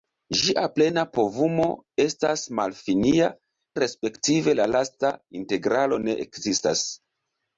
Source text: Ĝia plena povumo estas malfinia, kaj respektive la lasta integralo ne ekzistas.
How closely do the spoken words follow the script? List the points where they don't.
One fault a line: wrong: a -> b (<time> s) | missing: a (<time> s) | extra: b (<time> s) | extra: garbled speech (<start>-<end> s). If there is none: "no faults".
missing: kaj (3.3 s)